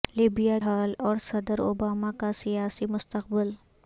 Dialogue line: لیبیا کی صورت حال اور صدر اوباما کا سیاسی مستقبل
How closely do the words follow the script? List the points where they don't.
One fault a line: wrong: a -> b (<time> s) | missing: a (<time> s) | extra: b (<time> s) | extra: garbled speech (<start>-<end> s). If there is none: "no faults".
missing: کی صورت (0.6 s)